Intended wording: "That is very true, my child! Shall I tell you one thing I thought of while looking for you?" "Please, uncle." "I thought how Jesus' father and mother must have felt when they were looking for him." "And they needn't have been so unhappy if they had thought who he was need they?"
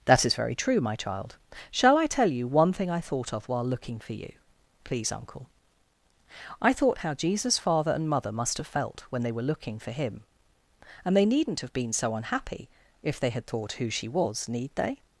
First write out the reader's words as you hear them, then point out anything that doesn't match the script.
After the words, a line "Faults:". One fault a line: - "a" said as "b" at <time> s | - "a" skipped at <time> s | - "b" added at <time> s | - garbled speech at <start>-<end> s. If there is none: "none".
"That is very true, my child! Shall I tell you one thing I thought of while looking for you?" "Please, uncle." "I thought how Jesus' father and mother must have felt when they were looking for him." "And they needn't have been so unhappy if they had thought who she was need they?"
Faults:
- "he" said as "she" at 13.9 s